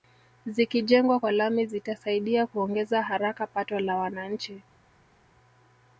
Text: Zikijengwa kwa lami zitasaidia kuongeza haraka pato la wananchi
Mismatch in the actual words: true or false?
false